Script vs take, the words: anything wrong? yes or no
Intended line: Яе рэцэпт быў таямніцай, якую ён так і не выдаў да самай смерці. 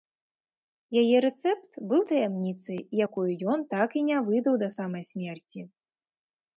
no